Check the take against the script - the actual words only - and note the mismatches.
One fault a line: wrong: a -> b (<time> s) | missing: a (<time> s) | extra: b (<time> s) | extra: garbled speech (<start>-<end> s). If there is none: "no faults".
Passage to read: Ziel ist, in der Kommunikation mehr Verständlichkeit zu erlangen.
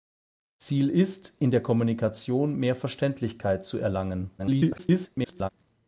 extra: garbled speech (4.4-5.5 s)